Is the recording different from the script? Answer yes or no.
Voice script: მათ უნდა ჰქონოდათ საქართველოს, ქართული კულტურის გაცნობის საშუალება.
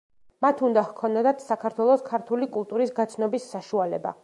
no